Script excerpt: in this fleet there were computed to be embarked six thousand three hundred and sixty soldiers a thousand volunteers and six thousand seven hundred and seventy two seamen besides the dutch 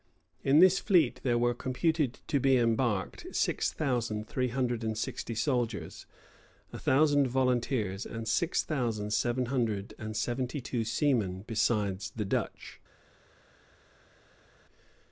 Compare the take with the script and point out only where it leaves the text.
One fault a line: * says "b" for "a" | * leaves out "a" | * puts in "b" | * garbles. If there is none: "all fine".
all fine